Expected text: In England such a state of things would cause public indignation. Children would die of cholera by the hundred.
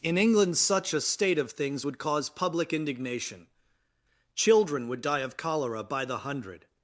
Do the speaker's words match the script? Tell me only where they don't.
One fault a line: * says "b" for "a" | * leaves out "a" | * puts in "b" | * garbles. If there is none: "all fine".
all fine